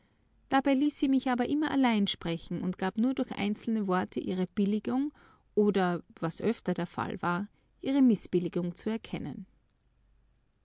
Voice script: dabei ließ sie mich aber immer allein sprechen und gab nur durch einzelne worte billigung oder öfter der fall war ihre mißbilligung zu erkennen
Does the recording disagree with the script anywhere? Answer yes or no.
yes